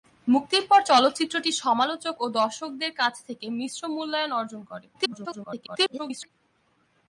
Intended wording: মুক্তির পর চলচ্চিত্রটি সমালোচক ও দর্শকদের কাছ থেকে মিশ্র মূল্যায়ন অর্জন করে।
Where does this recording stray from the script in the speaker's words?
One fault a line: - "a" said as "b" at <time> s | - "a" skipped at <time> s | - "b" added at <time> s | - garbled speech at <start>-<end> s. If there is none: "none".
- garbled speech at 4.9-6.3 s